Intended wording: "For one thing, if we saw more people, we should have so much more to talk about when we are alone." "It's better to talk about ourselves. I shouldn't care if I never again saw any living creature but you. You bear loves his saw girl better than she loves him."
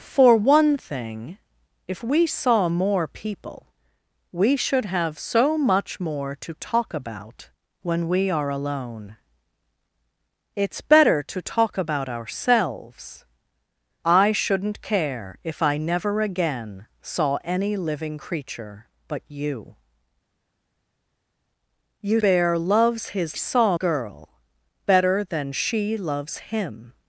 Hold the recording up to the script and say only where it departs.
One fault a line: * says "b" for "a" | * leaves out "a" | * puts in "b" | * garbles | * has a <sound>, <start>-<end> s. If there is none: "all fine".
all fine